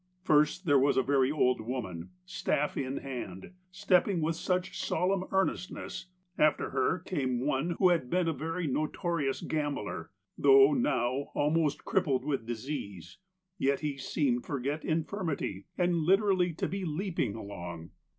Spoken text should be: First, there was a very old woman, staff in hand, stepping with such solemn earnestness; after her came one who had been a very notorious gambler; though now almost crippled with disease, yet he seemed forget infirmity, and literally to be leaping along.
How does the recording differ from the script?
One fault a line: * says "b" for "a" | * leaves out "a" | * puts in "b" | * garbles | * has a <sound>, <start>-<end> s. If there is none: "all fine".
all fine